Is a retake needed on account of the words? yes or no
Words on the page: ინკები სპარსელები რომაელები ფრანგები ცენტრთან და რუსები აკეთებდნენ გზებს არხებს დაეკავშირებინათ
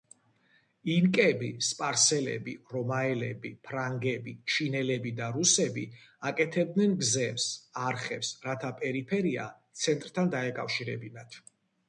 yes